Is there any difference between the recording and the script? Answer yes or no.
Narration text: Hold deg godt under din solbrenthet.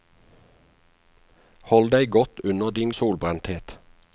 no